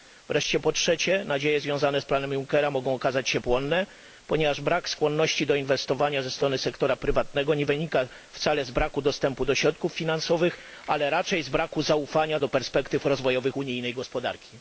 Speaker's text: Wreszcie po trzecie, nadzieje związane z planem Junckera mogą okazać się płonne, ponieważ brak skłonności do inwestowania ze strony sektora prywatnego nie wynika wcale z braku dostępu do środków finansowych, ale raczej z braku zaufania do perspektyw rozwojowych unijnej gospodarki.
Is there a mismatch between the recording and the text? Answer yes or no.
no